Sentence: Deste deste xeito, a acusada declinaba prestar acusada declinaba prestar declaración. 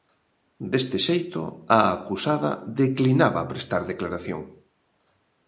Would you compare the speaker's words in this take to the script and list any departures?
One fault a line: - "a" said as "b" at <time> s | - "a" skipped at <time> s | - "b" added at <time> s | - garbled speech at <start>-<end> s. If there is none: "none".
- "deste" skipped at 1.0 s
- "acusada declinaba prestar" skipped at 3.8 s